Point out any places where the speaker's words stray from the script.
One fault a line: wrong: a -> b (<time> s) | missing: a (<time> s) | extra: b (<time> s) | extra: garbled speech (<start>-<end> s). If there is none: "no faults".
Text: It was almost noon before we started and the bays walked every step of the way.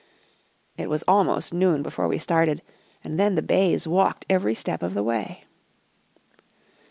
extra: then (3.2 s)